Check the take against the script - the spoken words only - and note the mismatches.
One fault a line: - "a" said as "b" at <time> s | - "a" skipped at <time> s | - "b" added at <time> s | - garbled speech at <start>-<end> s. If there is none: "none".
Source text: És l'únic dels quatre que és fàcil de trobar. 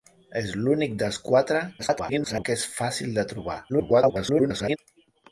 - garbled speech at 1.8-2.5 s
- garbled speech at 3.7-4.8 s